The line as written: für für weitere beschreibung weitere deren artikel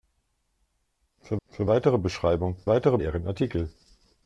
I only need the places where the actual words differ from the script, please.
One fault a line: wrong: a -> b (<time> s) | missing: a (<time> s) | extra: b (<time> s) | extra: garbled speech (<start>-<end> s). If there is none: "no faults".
no faults